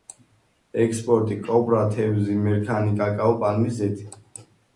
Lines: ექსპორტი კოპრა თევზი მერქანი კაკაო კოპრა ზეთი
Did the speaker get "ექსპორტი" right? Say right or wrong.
right